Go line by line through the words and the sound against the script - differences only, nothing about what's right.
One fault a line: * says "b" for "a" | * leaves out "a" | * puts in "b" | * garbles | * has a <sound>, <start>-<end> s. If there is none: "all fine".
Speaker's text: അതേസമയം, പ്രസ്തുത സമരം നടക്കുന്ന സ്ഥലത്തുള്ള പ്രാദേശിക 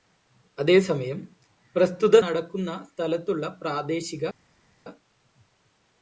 * leaves out "സമരം"